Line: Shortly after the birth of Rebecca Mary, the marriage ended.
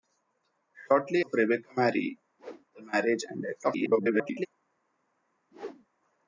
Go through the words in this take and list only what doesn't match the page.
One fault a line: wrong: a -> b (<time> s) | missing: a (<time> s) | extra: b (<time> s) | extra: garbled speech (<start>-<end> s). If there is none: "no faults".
missing: after the birth (1.2 s)
extra: garbled speech (3.6-4.5 s)